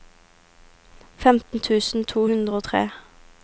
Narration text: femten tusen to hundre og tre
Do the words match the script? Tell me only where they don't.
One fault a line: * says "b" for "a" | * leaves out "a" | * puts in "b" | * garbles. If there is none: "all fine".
all fine